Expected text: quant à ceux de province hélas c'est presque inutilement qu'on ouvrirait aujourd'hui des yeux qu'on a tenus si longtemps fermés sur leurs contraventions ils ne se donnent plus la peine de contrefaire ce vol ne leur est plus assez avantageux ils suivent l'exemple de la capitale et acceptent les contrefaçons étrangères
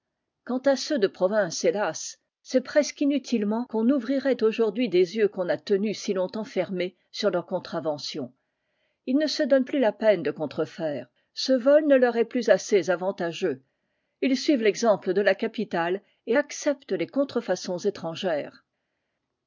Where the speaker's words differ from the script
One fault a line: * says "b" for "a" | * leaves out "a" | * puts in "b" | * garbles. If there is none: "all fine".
all fine